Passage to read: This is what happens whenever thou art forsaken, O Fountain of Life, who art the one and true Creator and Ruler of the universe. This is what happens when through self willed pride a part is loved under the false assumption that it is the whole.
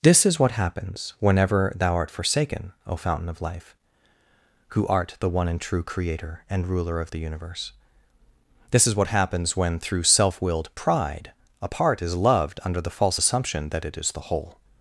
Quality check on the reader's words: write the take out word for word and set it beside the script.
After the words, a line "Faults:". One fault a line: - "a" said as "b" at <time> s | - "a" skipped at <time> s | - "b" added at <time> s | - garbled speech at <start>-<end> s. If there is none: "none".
This is what happens whenever thou art forsaken, O Fountain of Life, who art the one and true Creator and Ruler of the universe. This is what happens when through self willed pride a part is loved under the false assumption that it is the whole.
Faults:
none